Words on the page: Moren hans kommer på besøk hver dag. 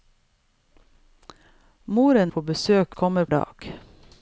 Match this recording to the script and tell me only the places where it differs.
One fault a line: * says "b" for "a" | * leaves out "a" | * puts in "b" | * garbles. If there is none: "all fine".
* leaves out "hans kommer"
* says "kommer" for "hver"